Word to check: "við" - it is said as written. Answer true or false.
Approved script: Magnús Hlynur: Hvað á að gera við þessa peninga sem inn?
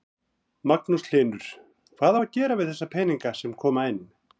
true